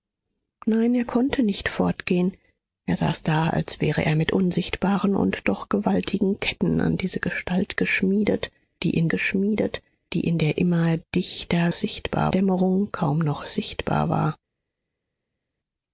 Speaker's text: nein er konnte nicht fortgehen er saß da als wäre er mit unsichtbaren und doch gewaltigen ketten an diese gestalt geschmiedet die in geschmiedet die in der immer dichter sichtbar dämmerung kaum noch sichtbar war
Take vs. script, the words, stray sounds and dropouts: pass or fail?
pass